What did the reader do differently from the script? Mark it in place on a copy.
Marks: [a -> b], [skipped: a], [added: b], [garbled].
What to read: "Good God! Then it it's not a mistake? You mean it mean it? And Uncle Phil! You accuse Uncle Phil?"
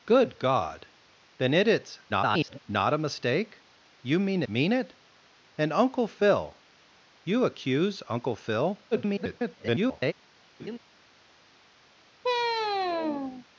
"Good God! Then it it's [garbled] not a mistake? You mean [skipped: it] mean it? And Uncle Phil! You accuse Uncle Phil?" [garbled]